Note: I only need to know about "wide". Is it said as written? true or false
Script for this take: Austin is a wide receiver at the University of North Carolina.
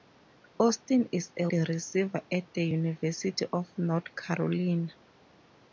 false